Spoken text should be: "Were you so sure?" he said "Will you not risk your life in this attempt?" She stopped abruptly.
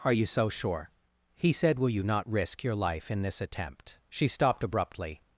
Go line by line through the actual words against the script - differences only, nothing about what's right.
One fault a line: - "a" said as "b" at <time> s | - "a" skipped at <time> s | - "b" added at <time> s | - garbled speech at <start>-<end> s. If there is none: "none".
- "Were" said as "Are" at 0.0 s